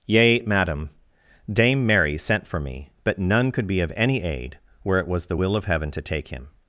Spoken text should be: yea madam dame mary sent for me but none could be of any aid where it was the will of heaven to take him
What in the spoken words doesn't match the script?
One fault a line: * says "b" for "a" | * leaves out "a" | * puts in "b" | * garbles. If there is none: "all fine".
all fine